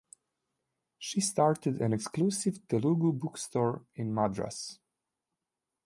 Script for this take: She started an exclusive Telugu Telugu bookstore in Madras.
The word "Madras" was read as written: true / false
true